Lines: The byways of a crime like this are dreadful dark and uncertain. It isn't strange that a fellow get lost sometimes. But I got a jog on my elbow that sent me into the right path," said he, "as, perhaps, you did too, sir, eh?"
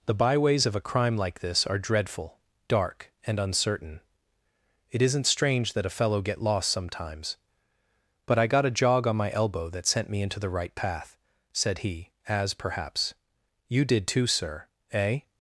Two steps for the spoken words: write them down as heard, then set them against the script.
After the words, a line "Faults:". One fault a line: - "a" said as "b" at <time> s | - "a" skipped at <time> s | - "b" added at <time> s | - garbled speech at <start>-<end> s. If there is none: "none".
The byways of a crime like this are dreadful dark and uncertain. It isn't strange that a fellow get lost sometimes. But I got a jog on my elbow that sent me into the right path," said he, "as, perhaps, you did too, sir, eh?"
Faults:
none